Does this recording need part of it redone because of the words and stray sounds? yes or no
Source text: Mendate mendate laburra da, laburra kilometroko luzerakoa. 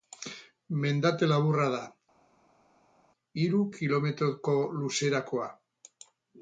yes